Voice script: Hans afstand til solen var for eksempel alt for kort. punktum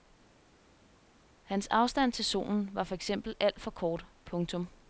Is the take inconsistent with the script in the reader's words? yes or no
no